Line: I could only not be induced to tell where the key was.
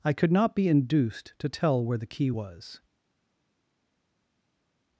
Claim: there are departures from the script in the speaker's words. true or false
true